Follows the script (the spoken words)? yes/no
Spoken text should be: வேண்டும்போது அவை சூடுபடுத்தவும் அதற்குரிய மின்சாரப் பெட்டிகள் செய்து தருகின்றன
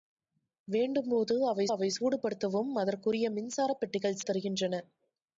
no